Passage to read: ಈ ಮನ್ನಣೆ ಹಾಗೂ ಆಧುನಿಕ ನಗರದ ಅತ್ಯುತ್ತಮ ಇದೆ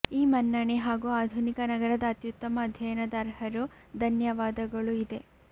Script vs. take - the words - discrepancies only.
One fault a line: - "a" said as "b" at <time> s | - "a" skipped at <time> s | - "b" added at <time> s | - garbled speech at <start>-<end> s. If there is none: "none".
- "ಅಧ್ಯಯನದ ಅರ್ಹರು ಧನ್ಯವಾದಗಳು" added at 2.6 s